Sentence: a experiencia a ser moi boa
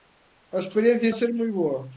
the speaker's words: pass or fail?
pass